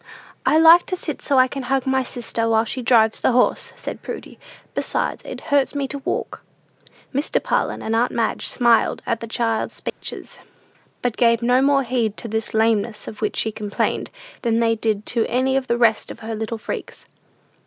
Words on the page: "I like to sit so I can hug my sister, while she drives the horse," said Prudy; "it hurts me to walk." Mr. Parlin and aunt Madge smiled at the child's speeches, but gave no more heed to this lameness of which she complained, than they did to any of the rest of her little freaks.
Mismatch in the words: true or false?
true